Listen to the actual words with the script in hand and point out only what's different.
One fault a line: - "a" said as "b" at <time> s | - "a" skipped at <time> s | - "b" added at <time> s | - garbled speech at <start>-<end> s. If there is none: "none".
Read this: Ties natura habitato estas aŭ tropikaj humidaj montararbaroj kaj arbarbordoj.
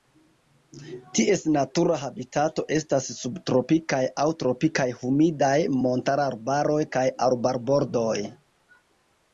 - "subtropikaj" added at 3.2 s